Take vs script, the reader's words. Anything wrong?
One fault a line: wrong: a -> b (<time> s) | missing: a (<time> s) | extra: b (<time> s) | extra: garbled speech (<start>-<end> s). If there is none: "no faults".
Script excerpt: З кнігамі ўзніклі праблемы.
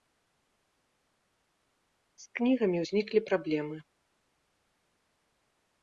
no faults